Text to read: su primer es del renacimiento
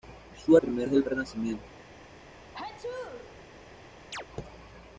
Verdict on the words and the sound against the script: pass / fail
fail